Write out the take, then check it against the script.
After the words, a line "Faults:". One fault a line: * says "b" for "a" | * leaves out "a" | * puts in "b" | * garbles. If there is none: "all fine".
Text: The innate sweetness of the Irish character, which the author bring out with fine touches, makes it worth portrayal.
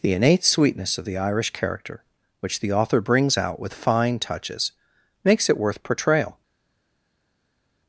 The innate sweetness of the Irish character, which the author brings out with fine touches, makes it worth portrayal.
Faults:
* says "brings" for "bring"